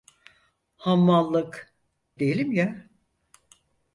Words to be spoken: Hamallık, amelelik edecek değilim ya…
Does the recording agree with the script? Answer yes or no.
no